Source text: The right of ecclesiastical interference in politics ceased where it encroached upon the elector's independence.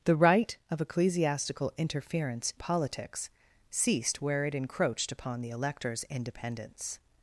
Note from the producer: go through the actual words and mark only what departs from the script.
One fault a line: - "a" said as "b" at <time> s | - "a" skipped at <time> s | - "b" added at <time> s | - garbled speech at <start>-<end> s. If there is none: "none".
- "in" skipped at 2.5 s